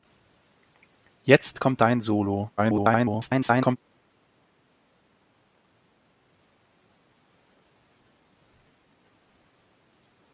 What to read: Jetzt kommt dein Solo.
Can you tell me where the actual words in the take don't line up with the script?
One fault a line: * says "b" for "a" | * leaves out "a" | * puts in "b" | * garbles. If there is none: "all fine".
* garbles